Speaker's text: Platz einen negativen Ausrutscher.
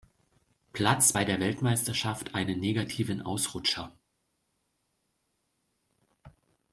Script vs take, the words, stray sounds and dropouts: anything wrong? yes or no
yes